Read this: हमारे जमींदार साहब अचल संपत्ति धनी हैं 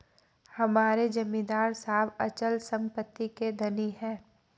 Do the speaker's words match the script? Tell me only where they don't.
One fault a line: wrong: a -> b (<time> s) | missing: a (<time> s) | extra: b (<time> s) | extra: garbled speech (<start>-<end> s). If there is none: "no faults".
extra: के (3.4 s)